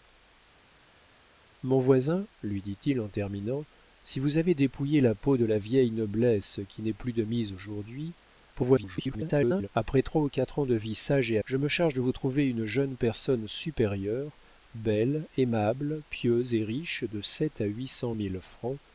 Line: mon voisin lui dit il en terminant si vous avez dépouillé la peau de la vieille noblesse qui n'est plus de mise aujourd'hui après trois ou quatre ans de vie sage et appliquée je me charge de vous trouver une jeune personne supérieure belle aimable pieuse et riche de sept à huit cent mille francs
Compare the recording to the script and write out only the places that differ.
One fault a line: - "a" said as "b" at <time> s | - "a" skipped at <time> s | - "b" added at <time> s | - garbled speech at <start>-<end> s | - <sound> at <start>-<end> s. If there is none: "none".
- garbled speech at 8.5-9.7 s
- "appliquée" skipped at 11.4 s